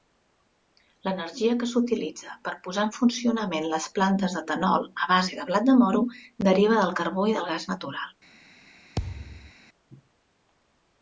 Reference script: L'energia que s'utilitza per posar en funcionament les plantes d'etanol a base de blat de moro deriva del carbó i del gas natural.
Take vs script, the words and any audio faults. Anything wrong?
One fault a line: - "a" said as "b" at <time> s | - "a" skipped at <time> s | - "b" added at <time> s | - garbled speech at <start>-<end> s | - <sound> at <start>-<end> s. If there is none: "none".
- thud at 9.0-9.5 s